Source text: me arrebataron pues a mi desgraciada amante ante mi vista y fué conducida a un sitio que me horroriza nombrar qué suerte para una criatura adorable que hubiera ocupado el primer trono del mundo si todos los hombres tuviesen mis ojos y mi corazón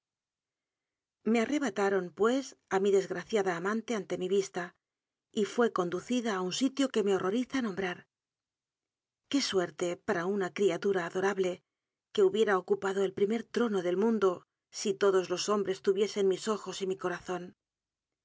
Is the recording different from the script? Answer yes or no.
no